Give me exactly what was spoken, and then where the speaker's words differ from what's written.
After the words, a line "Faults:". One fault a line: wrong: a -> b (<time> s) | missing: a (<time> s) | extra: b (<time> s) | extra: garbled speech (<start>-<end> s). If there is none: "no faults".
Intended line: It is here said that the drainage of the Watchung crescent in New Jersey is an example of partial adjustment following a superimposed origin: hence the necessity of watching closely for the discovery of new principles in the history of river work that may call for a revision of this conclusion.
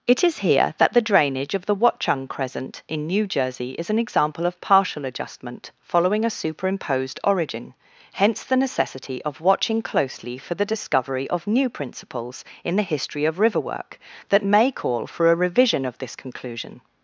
It is here that the drainage of the Watchung crescent in New Jersey is an example of partial adjustment following a superimposed origin: hence the necessity of watching closely for the discovery of new principles in the history of river work that may call for a revision of this conclusion.
Faults:
missing: said (0.7 s)